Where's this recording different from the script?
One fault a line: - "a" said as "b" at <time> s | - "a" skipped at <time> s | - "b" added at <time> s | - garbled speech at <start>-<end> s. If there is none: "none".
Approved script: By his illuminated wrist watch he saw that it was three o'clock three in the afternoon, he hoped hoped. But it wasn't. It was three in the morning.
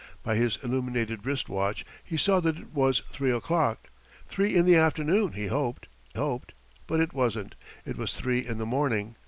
none